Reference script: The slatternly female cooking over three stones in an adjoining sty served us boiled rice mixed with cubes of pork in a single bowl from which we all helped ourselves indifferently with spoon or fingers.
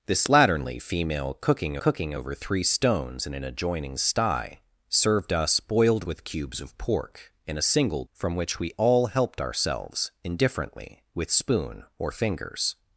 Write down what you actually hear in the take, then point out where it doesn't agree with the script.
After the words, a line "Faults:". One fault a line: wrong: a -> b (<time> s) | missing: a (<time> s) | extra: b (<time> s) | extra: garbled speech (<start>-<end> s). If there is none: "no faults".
The slatternly female cooking cooking over three stones in an adjoining sty served us boiled with cubes of pork in a single from which we all helped ourselves indifferently with spoon or fingers.
Faults:
extra: cooking (1.8 s)
missing: rice mixed (6.1 s)
missing: bowl (8.0 s)